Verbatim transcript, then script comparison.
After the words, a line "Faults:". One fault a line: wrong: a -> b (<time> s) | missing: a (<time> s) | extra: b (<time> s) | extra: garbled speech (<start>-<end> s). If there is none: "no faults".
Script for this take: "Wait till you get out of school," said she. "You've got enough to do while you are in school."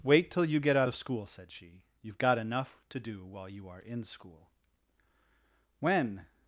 "Wait till you get out of school," said she. "You've got enough to do while you are in school." When
Faults:
extra: When (5.8 s)